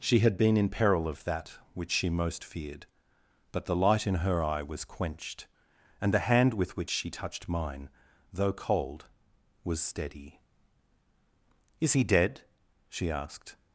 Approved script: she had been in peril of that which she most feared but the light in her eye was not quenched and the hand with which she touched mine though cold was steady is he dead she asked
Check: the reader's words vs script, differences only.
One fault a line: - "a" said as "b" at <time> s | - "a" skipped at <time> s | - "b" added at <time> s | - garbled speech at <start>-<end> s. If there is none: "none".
- "not" skipped at 4.8 s